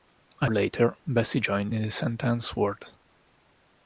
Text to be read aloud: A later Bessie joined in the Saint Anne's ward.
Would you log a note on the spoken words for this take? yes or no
no